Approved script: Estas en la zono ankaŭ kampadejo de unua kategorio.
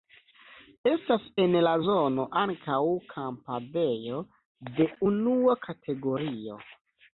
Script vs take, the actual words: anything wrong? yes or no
no